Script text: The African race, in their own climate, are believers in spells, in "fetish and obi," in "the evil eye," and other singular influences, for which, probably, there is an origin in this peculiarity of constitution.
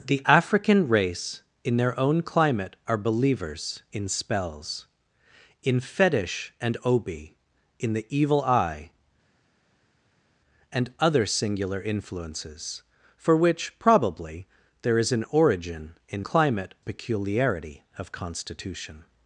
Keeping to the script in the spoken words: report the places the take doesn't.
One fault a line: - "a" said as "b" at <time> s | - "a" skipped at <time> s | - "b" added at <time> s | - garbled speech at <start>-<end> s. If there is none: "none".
- "this" said as "climate" at 16.2 s